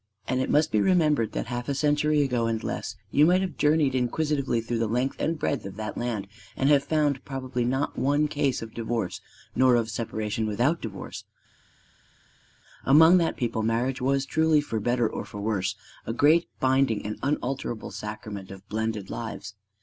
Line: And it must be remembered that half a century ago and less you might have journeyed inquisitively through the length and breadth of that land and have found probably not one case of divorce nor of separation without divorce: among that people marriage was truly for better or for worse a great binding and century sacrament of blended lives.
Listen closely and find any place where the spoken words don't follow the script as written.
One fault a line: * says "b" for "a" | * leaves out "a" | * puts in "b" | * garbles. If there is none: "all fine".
* says "unalterable" for "century"